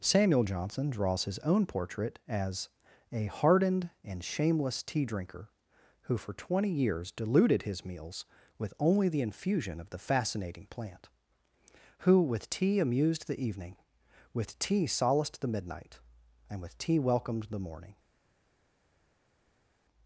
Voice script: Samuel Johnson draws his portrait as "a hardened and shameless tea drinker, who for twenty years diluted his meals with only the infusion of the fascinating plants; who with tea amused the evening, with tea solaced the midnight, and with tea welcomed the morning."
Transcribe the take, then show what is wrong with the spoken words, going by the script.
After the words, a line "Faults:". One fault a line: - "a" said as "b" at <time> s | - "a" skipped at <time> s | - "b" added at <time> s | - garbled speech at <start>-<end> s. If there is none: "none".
Samuel Johnson draws his own portrait as "a hardened and shameless tea drinker, who for twenty years diluted his meals with only the infusion of the fascinating plant; who with tea amused the evening, with tea solaced the midnight, and with tea welcomed the morning."
Faults:
- "own" added at 1.4 s
- "plants" said as "plant" at 10.7 s